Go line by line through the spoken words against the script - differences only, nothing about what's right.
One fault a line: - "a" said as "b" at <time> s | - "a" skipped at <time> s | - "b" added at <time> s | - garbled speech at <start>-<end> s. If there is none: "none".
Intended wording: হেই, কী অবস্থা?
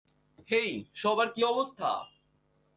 - "সবার" added at 0.9 s